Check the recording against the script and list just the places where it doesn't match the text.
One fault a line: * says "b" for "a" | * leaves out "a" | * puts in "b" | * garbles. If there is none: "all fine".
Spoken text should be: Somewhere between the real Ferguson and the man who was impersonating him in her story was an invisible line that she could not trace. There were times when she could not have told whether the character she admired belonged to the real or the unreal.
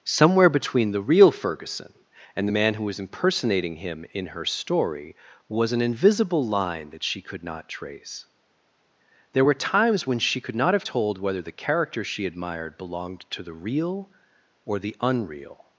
all fine